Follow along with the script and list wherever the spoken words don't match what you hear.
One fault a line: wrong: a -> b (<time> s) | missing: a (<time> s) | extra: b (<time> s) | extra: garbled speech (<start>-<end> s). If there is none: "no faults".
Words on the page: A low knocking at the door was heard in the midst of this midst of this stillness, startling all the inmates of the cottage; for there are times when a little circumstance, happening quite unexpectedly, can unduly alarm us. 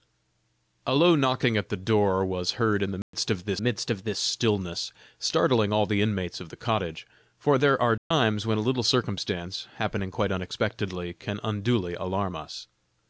no faults